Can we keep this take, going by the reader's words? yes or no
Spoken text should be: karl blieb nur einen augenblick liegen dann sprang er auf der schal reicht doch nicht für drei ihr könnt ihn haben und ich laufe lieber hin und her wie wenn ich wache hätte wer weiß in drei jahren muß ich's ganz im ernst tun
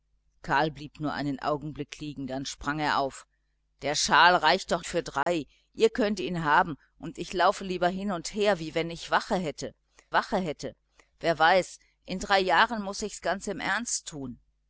no